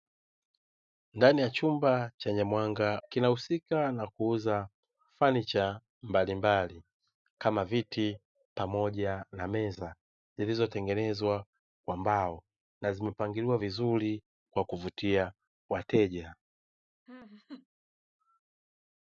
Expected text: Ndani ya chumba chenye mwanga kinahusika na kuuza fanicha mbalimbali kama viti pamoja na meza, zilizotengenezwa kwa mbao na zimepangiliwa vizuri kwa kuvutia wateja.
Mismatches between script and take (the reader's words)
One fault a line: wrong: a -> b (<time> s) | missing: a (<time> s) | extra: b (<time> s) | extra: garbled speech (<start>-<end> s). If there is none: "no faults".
no faults